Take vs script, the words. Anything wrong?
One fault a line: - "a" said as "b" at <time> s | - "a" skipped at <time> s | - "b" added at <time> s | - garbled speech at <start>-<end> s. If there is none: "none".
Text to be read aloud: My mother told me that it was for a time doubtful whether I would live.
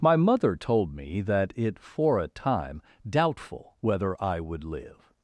- "was" skipped at 1.8 s